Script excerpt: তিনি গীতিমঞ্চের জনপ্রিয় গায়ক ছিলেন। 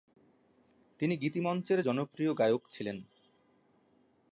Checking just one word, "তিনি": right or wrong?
right